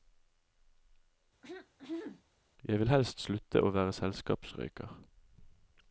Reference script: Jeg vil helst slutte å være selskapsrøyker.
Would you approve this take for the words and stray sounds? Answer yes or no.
no